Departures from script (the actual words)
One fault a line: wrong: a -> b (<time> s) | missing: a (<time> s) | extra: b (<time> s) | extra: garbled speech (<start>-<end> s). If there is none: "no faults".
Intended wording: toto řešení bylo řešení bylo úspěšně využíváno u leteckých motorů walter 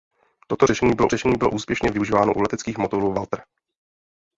no faults